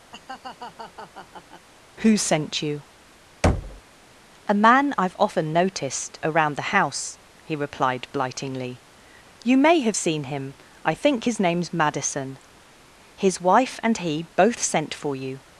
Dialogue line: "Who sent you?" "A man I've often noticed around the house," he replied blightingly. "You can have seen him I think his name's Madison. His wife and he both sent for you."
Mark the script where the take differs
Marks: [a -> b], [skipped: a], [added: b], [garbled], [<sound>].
[laugh] "Who sent you?" [thud] "A man I've often noticed around the house," he replied blightingly. "You [can -> may] have seen him I think his name's Madison. His wife and he both sent for you."